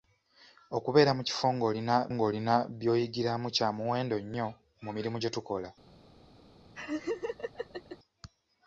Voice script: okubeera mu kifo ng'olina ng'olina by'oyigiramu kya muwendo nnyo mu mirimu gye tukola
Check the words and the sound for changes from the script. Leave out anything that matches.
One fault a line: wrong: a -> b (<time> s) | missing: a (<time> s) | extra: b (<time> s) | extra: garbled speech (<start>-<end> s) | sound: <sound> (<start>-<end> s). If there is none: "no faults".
sound: laugh (6.7-8.0 s)